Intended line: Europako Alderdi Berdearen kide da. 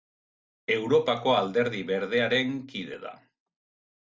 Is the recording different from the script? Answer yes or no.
no